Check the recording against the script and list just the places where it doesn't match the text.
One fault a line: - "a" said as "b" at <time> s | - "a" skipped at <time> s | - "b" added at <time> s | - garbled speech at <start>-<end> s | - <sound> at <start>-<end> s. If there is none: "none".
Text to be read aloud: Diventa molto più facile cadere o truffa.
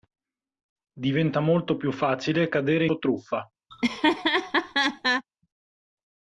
- laugh at 3.7-5.2 s